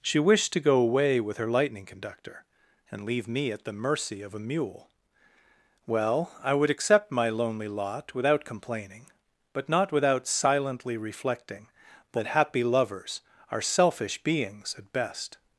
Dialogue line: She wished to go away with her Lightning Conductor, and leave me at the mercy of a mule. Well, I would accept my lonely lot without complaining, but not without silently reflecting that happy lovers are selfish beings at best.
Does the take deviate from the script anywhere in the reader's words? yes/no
no